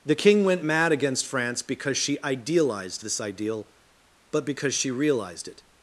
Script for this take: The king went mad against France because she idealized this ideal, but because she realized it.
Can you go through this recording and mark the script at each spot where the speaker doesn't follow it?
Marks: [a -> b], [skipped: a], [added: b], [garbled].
The king went mad against France because she idealized this ideal, but because she realized it.